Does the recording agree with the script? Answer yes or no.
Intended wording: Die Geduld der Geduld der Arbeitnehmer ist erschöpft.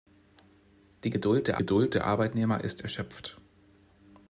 yes